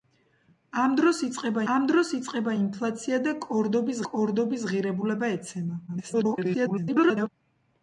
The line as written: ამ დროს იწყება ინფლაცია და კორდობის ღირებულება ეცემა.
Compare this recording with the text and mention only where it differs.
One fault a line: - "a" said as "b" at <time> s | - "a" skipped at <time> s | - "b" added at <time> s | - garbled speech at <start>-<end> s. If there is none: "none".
- "ამ დროს იწყება" added at 1.7 s
- "კორდობის" added at 4.1 s
- garbled speech at 5.9-7.3 s